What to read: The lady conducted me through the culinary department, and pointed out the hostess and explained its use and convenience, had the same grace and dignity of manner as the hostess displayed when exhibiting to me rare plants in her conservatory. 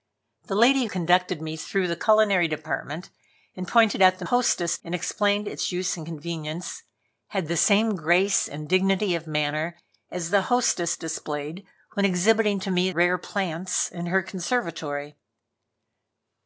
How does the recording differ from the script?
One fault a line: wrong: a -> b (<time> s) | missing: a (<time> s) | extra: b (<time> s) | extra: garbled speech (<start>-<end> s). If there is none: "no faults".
no faults